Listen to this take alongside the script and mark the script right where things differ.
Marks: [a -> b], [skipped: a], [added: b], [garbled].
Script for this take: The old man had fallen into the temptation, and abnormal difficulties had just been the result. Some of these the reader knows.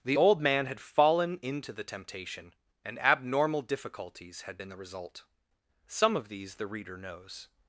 The old man had fallen into the temptation, and abnormal difficulties had [skipped: just] been the result. Some of these the reader knows.